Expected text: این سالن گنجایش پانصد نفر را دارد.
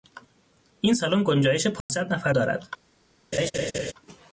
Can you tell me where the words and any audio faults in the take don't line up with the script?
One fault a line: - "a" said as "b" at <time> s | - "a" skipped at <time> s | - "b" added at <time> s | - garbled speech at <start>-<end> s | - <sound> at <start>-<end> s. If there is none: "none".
- dropout at 1.8-1.9 s
- "را" skipped at 2.3 s
- laugh at 3.3-3.9 s